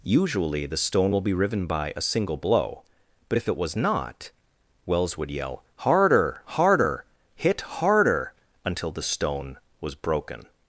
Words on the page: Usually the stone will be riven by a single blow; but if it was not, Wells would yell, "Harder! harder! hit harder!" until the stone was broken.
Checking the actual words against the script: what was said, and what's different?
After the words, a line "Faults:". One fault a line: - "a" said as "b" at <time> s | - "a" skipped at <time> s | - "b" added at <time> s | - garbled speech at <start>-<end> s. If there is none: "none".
Usually the stone will be riven by a single blow; but if it was not, Wells would yell, "Harder! harder! hit harder!" until the stone was broken.
Faults:
none